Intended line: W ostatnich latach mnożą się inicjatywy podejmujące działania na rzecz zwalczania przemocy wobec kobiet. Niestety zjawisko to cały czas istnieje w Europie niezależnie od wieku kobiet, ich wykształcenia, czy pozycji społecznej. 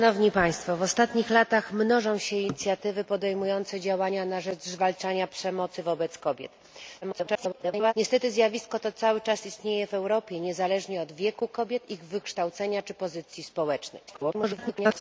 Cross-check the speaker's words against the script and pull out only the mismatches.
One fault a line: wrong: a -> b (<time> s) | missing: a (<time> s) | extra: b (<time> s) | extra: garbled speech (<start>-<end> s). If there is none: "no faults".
extra: garbled speech (7.0-7.9 s)
extra: garbled speech (14.1-15.0 s)